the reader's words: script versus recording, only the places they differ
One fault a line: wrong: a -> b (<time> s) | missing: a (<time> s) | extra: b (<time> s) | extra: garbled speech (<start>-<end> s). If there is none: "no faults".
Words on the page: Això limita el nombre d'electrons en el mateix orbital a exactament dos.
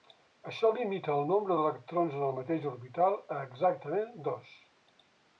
no faults